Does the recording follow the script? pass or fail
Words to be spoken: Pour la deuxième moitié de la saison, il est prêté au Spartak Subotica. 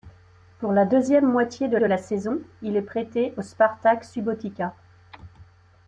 fail